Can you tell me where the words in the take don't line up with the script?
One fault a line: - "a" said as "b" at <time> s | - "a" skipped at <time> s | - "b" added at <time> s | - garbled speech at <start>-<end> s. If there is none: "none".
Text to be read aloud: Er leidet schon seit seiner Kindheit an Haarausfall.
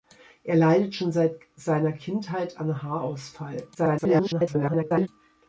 - garbled speech at 3.7-5.1 s